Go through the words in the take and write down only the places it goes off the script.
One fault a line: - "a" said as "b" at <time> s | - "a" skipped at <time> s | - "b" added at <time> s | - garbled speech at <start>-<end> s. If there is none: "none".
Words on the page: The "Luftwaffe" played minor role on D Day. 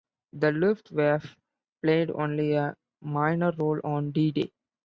- "only a" added at 2.1 s